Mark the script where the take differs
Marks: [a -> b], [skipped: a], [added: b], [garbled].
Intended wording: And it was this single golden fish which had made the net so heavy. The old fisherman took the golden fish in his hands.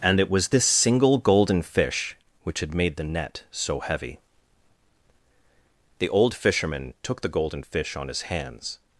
And it was this single golden fish which had made the net so heavy. The old fisherman took the golden fish [in -> on] his hands.